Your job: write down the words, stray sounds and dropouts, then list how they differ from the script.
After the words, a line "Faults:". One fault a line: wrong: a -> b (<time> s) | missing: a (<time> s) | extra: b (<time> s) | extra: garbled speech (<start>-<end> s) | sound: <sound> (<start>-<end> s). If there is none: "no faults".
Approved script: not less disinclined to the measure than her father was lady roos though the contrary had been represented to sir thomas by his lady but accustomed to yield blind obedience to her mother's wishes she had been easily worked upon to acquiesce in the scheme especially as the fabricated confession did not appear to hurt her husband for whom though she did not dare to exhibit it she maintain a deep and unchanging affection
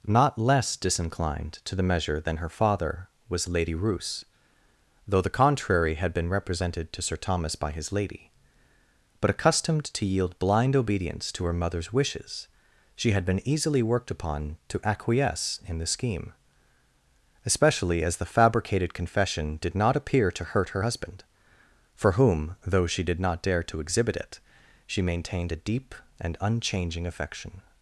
not less disinclined to the measure than her father was lady roos though the contrary had been represented to sir thomas by his lady but accustomed to yield blind obedience to her mother's wishes she had been easily worked upon to acquiesce in the scheme especially as the fabricated confession did not appear to hurt her husband for whom though she did not dare to exhibit it she maintained a deep and unchanging affection
Faults:
wrong: maintain -> maintained (25.0 s)